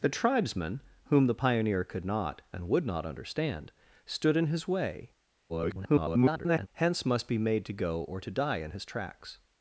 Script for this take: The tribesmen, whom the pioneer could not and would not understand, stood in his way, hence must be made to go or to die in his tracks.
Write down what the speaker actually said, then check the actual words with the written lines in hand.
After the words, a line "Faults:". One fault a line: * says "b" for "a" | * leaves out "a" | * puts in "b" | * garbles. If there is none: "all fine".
The tribesmen, whom the pioneer could not and would not understand, stood in his way, [garbled] hence must be made to go or to die in his tracks.
Faults:
* garbles